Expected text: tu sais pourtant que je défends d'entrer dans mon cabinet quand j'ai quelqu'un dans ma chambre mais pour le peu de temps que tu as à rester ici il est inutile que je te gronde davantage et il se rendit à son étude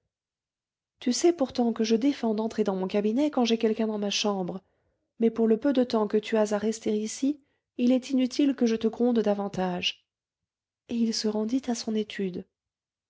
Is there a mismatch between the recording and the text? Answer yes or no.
no